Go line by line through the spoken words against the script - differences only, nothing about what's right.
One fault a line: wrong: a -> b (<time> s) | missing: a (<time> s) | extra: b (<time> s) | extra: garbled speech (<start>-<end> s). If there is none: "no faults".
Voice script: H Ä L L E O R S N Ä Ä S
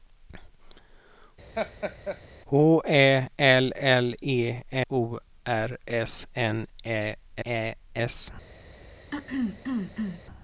no faults